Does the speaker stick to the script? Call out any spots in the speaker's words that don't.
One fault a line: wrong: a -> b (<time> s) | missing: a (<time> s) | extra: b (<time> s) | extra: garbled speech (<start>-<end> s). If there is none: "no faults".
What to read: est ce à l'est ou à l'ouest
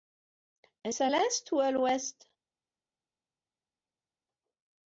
no faults